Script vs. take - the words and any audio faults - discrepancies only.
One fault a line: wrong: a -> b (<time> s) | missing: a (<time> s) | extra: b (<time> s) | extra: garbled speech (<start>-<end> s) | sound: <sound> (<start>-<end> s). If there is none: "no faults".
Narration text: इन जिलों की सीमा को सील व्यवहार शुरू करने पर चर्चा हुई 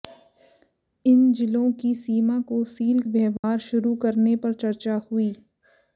sound: dropout (3.4-3.4 s)